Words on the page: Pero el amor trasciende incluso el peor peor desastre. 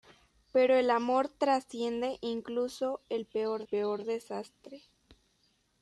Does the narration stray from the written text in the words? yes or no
no